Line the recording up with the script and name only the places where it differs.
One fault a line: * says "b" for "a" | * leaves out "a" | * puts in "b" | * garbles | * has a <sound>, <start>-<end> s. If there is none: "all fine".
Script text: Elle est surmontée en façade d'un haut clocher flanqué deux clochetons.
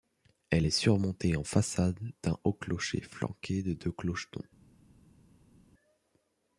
* puts in "de"